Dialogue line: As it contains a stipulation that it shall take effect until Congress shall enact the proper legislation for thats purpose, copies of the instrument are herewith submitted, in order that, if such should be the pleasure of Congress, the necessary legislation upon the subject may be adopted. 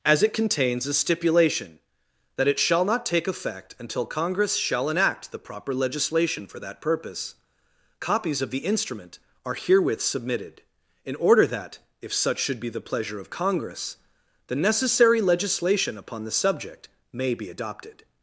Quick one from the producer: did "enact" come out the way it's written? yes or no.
yes